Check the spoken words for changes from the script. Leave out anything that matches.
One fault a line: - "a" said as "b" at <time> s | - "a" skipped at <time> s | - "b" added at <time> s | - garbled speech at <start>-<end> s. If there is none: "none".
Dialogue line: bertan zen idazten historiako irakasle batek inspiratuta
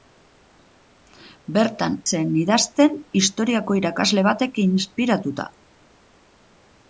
none